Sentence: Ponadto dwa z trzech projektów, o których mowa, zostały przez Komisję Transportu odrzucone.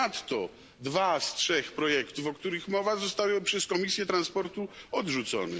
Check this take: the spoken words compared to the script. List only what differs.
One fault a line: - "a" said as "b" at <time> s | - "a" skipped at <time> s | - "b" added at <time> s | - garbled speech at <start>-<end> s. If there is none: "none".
none